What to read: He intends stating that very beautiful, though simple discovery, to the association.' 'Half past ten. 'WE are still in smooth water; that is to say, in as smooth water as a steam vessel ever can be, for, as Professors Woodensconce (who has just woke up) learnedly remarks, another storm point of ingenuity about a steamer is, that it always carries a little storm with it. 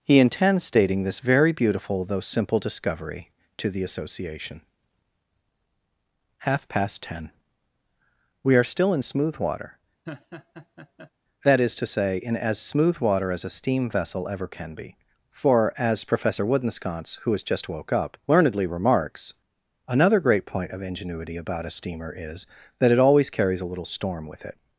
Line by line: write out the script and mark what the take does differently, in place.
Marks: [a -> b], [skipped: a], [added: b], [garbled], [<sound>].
He intends stating [that -> this] very beautiful, though simple discovery, to the association.' 'Half past ten. 'WE are still in smooth water; [laugh] that is to say, in as smooth water as a steam vessel ever can be, for, as [Professors -> Professor] Woodensconce (who has just woke up) learnedly remarks, another [storm -> great] point of ingenuity about a steamer is, that it always carries a little storm with it.